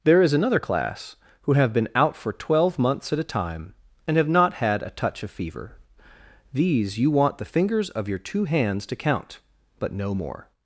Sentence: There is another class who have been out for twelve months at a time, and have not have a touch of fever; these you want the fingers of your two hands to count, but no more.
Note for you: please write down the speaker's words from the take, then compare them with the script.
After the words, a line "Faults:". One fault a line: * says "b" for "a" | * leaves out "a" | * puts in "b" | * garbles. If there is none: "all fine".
There is another class who have been out for twelve months at a time, and have not had a touch of fever; these you want the fingers of your two hands to count, but no more.
Faults:
* says "had" for "have"